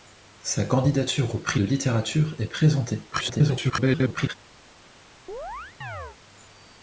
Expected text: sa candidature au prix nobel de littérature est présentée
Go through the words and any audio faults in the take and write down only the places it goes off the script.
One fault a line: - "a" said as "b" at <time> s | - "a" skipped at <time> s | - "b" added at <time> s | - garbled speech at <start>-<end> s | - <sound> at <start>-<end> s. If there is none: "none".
- "nobel" skipped at 1.6 s
- garbled speech at 3.1-4.3 s
- chirp at 5.3-6.2 s